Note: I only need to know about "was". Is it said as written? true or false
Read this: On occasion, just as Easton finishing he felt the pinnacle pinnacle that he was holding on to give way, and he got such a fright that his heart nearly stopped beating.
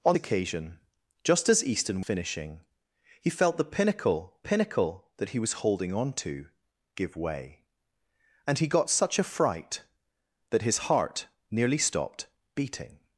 true